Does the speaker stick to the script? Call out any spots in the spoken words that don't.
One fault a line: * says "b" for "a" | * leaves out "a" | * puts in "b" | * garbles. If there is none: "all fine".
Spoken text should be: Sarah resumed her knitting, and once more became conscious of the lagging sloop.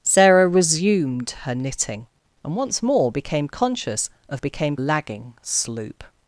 * says "became" for "the"